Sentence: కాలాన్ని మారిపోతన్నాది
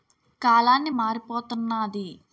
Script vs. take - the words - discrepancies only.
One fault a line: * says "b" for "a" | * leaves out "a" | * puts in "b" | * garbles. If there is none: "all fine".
all fine